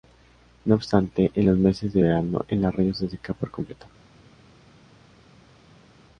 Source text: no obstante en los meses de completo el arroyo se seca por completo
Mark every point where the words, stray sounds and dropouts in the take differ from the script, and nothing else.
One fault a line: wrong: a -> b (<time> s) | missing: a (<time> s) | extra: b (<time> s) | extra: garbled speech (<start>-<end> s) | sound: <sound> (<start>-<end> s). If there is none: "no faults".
wrong: completo -> verano (2.0 s)